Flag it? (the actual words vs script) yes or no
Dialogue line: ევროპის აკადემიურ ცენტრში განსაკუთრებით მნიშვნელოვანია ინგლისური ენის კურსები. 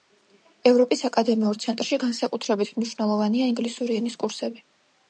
no